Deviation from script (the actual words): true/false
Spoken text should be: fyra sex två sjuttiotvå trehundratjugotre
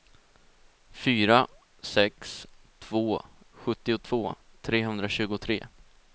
false